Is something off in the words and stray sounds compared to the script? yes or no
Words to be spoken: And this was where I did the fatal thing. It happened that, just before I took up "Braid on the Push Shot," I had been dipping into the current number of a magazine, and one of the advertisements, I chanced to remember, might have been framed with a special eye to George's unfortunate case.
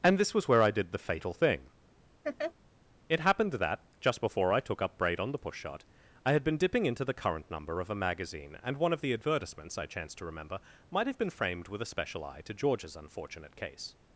yes